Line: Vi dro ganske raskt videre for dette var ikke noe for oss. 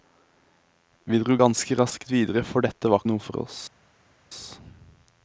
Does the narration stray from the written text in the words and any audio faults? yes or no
yes